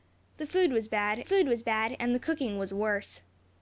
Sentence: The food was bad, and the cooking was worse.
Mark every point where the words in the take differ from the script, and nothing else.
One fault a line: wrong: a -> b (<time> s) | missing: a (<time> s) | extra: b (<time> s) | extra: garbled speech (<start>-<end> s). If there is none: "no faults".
extra: food was bad (1.2 s)